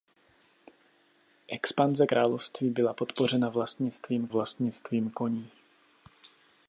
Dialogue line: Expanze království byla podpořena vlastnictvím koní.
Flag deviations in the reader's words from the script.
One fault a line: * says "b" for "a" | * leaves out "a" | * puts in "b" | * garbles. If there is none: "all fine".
* puts in "vlastnictvím"